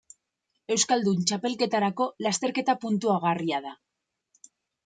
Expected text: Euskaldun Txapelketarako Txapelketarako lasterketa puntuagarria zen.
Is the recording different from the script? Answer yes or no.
yes